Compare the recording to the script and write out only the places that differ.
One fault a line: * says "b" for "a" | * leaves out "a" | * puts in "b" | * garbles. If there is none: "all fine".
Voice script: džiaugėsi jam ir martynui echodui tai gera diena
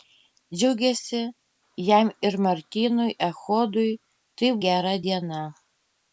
all fine